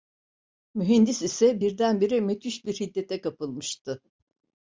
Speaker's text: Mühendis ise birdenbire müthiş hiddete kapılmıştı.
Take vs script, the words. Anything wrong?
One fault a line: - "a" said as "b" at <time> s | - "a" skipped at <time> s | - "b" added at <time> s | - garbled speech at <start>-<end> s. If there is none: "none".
- "bir" added at 2.6 s